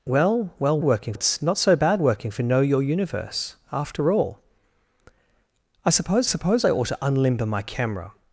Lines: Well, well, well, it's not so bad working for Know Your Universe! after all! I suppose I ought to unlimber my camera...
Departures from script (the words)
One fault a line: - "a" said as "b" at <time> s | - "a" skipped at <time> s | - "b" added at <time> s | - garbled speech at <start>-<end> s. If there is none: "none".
- "well" said as "working" at 0.8 s
- "suppose" added at 6.3 s